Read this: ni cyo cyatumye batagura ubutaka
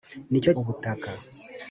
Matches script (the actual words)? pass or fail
fail